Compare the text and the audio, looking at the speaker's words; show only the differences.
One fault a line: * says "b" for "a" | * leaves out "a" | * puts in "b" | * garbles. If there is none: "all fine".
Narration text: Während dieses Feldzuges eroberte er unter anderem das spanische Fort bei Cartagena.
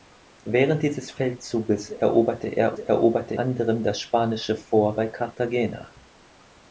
* says "eroberte" for "unter"